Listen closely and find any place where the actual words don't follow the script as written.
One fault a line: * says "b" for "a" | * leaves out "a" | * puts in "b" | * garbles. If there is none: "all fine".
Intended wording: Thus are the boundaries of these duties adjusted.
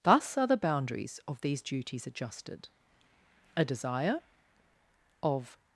* puts in "A desire of"